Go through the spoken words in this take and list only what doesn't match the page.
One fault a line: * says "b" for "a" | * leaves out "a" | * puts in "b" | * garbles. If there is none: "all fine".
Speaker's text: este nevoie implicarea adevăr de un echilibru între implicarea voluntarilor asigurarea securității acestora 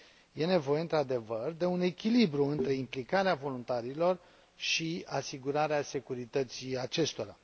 * says "într" for "implicarea"
* puts in "și"